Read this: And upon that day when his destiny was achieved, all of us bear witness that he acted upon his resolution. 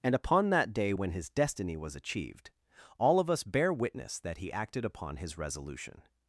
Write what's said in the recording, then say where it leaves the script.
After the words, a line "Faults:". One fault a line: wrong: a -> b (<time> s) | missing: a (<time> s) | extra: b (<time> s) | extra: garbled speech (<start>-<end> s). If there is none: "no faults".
And upon that day when his destiny was achieved, all of us bear witness that he acted upon his resolution.
Faults:
no faults